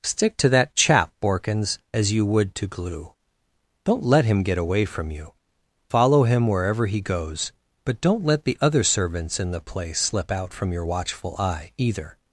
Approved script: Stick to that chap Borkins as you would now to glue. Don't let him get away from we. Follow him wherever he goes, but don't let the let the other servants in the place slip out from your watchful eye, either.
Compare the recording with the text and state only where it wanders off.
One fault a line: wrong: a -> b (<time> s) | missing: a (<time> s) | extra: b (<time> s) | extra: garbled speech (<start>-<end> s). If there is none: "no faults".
missing: now (2.5 s)
wrong: we -> you (5.1 s)
missing: let the (8.6 s)